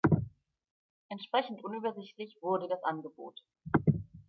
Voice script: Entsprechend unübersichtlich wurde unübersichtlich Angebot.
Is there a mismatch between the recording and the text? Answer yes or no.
yes